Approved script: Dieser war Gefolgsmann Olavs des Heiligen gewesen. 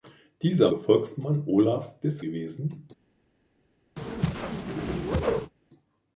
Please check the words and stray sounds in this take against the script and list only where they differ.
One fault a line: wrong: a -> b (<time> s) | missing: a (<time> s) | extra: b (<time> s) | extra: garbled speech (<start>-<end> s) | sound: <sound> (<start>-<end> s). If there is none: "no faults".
missing: war (0.7 s)
missing: Heiligen (2.2 s)
sound: whoosh (4.0-5.5 s)